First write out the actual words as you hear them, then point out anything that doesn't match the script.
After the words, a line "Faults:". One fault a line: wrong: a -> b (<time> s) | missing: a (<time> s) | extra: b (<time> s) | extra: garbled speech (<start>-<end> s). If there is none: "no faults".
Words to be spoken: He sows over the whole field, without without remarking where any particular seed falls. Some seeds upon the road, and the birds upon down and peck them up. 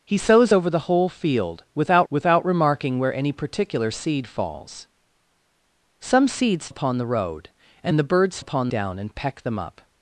He sows over the whole field, without without remarking where any particular seed falls. Some seeds upon the road, and the birds upon down and peck them up.
Faults:
no faults